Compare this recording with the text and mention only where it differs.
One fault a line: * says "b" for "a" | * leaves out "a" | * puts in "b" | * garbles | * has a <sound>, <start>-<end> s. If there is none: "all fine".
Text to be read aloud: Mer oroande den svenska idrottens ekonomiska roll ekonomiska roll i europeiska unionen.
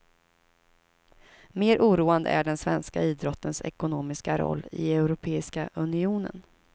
* puts in "är"
* leaves out "ekonomiska roll"